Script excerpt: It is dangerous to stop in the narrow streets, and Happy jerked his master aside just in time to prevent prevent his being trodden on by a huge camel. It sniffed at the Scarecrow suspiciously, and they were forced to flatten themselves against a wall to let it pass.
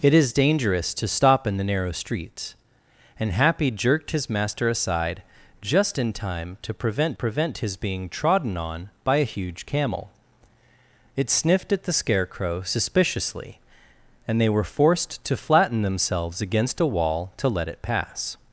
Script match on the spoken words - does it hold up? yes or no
yes